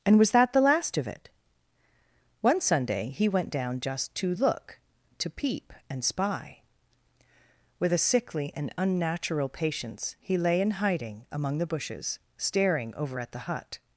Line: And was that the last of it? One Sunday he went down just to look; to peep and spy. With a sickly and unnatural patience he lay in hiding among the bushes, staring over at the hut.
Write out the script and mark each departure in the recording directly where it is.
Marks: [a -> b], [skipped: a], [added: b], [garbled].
And was that the last of it? One Sunday he went down just to look; to peep and spy. With a sickly and unnatural patience he lay in hiding among the bushes, staring over at the hut.